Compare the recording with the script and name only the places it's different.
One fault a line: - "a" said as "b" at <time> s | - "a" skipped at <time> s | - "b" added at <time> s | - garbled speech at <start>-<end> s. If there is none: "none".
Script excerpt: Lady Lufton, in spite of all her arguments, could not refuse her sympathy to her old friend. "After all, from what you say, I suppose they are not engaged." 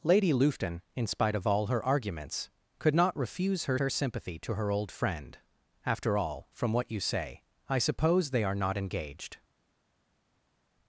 - "her" added at 3.8 s